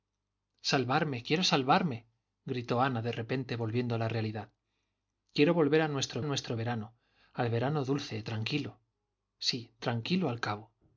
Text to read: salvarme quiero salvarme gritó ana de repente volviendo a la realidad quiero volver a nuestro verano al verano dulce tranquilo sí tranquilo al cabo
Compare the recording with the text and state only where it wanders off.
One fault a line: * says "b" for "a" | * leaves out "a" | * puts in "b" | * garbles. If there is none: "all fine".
* puts in "nuestro"